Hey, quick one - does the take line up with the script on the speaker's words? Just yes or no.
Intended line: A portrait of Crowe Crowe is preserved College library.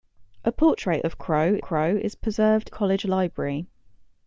yes